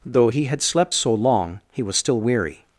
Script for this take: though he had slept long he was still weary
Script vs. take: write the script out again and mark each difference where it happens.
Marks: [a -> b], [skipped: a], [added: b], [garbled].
though he had slept [added: so] long he was still weary